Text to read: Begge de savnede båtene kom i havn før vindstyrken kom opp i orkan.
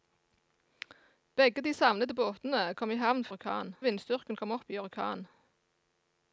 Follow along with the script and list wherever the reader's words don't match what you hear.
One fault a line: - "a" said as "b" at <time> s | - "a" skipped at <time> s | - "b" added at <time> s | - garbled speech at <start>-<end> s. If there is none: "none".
- "før" said as "orkan" at 3.3 s